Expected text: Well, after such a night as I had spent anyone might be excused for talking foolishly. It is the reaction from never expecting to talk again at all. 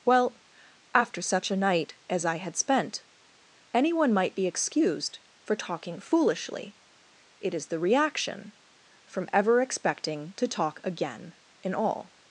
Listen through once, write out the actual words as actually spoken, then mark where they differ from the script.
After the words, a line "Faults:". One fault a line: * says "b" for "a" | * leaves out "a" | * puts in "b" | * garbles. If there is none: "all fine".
Well, after such a night as I had spent anyone might be excused for talking foolishly. It is the reaction from ever expecting to talk again in all.
Faults:
* says "ever" for "never"
* says "in" for "at"